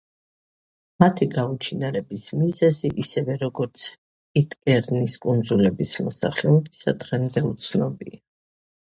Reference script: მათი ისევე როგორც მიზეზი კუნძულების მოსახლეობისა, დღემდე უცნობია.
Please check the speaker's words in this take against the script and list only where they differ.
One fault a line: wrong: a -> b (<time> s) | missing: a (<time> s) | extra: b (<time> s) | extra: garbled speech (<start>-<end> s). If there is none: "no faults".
extra: გაუჩინარების მიზეზი (1.3 s)
wrong: მიზეზი -> პიტკერნის (4.4 s)